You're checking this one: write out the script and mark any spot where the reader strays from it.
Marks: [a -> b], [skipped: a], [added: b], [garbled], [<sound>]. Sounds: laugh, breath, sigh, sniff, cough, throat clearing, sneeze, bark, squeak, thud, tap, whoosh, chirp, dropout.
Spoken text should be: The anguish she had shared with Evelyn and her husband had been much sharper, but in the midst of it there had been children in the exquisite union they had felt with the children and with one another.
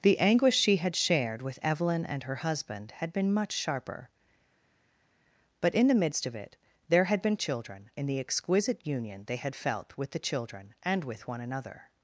The anguish she had shared with Evelyn and her husband had been much sharper, but in the midst of it there had been children in the exquisite union they had felt with the children and with one another.